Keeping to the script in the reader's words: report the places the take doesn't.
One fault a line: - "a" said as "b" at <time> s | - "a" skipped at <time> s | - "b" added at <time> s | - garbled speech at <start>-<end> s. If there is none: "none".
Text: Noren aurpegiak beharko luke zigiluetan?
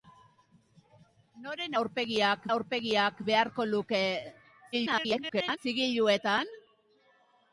- "aurpegiak" added at 2.5 s
- garbled speech at 4.7-5.6 s